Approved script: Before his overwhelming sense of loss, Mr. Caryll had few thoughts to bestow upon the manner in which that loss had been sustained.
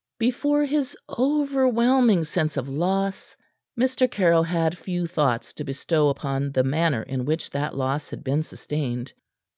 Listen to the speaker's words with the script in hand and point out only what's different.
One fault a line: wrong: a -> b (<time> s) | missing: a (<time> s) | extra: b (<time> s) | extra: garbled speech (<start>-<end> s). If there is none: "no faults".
no faults